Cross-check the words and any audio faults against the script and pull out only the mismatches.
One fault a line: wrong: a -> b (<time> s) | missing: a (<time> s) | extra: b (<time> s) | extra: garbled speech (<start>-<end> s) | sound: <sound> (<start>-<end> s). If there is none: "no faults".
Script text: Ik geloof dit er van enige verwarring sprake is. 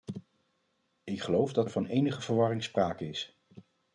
wrong: dit -> dat (1.5 s)